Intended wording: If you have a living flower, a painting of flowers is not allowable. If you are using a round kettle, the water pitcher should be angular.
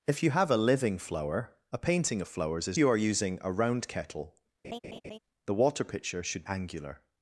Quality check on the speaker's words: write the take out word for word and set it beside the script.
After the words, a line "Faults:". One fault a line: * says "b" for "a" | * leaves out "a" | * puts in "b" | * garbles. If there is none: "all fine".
If you have a living flower, a painting of flowers is you are using a round kettle, the water pitcher should angular.
Faults:
* leaves out "not allowable If"
* leaves out "be"